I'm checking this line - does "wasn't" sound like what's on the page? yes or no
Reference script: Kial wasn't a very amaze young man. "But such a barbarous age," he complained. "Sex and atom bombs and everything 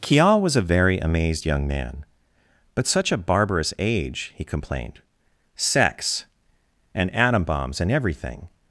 no